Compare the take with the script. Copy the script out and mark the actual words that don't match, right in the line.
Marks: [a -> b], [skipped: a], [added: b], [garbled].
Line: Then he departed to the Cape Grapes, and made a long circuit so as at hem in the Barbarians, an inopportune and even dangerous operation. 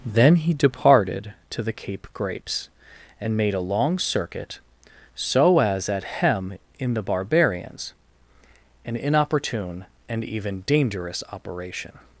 Then he departed to the Cape Grapes, and made a long circuit so as at hem in the Barbarians, an inopportune and even dangerous operation.